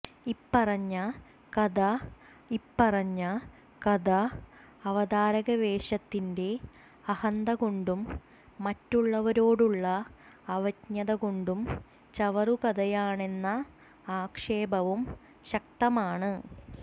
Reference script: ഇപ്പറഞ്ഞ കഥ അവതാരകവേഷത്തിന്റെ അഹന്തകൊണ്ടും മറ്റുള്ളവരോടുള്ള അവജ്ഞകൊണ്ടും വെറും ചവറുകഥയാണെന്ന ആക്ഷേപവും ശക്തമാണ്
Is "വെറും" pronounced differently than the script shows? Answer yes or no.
yes